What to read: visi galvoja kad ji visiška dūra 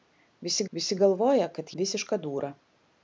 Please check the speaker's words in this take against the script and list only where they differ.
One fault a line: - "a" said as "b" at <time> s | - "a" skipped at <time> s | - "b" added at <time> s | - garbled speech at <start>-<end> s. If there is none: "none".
- "visi" added at 0.8 s
- "ji" skipped at 1.7 s